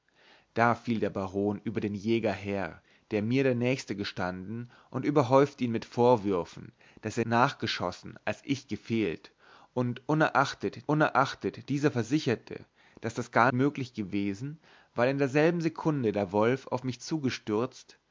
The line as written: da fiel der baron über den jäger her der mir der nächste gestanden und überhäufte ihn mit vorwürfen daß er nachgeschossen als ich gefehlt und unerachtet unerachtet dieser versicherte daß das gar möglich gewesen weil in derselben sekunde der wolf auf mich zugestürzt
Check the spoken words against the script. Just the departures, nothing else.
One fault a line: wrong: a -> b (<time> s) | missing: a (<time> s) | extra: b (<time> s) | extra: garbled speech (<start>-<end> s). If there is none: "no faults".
no faults